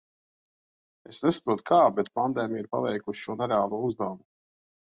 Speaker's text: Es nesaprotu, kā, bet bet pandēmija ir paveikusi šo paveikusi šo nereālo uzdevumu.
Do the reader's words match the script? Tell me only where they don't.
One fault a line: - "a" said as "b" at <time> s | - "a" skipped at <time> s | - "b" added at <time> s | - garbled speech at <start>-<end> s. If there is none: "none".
- "bet" skipped at 2.1 s
- "paveikusi šo" skipped at 3.4 s